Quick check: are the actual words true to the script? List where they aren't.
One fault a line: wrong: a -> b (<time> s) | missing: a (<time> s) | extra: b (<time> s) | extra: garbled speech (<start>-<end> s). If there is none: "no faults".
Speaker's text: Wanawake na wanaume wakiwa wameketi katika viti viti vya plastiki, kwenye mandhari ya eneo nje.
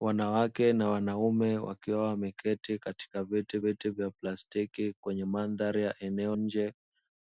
no faults